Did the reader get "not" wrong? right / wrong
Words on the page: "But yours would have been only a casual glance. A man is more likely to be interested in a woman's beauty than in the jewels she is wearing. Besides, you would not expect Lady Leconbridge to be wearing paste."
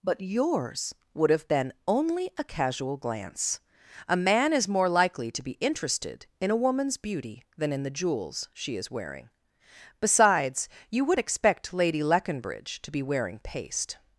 wrong